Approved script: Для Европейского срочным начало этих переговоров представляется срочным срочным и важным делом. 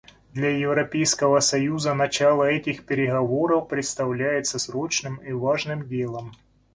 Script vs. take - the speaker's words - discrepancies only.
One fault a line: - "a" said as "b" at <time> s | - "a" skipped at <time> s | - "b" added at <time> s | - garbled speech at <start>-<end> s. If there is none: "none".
- "срочным" said as "союза" at 1.4 s
- "срочным" skipped at 5.2 s